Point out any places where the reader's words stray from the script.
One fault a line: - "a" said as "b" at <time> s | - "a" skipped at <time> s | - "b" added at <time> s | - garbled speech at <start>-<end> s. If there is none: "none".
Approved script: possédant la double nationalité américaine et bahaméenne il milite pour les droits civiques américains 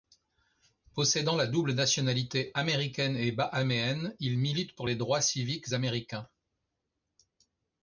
none